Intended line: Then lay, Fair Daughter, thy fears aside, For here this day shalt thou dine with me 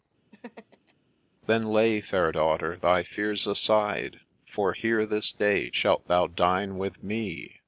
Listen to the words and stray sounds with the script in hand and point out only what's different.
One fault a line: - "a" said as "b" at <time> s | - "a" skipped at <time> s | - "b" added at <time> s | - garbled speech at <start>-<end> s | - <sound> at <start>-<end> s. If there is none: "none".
- laugh at 0.3-0.9 s